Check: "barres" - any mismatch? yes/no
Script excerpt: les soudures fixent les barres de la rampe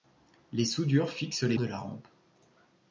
yes